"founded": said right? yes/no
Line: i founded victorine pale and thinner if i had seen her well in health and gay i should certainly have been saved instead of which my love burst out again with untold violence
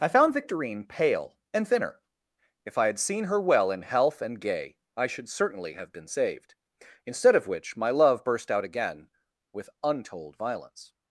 no